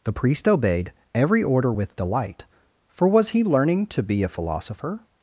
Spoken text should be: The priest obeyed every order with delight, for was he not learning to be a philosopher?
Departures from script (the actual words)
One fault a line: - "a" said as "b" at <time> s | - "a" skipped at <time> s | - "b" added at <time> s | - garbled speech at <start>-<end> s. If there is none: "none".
- "not" skipped at 3.4 s